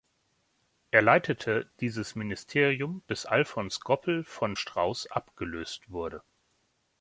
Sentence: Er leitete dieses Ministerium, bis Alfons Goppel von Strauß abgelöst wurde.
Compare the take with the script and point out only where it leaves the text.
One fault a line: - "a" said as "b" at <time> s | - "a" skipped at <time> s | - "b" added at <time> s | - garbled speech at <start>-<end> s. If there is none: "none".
none